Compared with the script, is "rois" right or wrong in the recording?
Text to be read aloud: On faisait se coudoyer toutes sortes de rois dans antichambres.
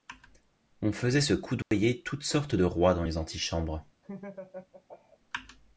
right